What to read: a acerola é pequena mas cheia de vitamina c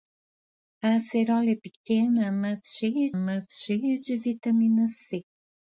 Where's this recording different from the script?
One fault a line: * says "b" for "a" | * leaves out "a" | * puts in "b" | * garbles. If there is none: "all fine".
* puts in "mas cheia"